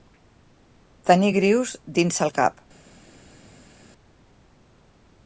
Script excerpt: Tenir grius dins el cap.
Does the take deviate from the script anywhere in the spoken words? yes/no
no